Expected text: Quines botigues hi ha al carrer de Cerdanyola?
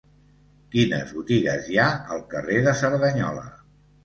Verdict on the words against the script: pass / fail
pass